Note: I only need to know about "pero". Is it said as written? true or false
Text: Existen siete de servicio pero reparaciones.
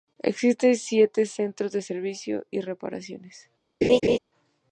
false